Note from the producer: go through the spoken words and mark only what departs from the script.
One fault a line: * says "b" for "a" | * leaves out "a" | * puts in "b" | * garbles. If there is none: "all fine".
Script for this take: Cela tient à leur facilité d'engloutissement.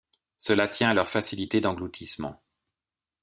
all fine